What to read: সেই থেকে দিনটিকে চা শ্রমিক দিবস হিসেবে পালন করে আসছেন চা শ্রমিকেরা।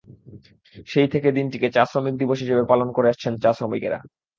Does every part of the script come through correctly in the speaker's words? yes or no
yes